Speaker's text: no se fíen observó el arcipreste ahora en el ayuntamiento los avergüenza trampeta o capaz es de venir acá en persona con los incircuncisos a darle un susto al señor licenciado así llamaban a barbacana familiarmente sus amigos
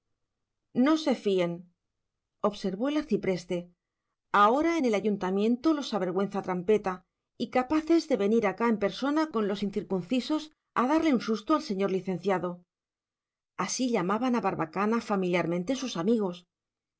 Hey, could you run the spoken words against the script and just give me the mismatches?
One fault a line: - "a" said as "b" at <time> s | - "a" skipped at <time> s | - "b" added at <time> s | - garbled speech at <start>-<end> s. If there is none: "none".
- "o" said as "y" at 7.4 s